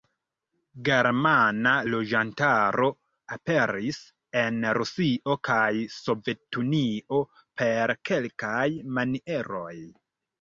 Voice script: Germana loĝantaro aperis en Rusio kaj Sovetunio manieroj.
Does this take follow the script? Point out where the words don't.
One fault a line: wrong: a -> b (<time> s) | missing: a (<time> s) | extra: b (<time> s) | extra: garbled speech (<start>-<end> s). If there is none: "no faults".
extra: per kelkaj (7.6 s)